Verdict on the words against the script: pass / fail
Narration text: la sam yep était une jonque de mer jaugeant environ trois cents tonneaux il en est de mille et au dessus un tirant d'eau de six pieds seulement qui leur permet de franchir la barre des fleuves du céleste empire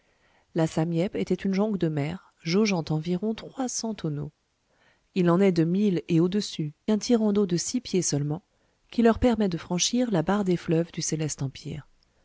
pass